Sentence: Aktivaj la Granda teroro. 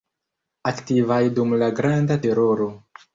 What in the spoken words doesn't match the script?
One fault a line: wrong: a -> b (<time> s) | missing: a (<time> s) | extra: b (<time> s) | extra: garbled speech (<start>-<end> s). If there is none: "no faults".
extra: dum (1.4 s)